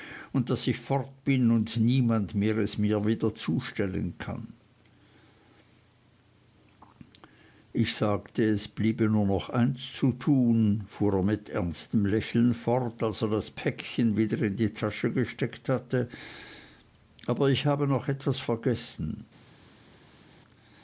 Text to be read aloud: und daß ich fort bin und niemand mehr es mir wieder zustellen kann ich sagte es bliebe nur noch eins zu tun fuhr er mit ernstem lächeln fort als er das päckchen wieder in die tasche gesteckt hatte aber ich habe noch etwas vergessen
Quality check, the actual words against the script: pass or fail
pass